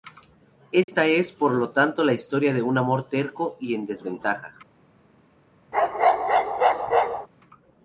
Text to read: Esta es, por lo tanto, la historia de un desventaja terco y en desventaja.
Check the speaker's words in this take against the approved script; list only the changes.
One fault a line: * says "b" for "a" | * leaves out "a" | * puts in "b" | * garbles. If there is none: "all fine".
* says "amor" for "desventaja"